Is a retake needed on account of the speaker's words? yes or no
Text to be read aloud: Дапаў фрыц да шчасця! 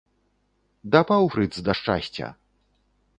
no